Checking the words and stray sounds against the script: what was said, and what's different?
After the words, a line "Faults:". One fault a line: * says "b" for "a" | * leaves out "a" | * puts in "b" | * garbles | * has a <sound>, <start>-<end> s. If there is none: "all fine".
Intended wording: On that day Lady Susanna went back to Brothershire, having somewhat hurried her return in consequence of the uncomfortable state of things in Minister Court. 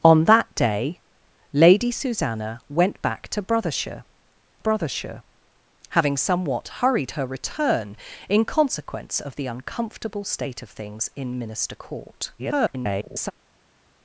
On that day Lady Susanna went back to Brothershire Brothershire, having somewhat hurried her return in consequence of the uncomfortable state of things in Minister Court. [garbled]
Faults:
* puts in "Brothershire"
* garbles